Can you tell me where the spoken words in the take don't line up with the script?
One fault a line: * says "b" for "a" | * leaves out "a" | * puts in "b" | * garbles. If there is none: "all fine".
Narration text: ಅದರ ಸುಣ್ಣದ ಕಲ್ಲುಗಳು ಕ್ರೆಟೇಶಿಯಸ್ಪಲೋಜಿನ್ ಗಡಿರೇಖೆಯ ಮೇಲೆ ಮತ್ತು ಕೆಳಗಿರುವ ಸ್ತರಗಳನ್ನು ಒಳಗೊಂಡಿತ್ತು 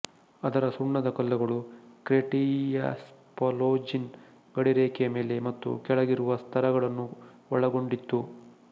all fine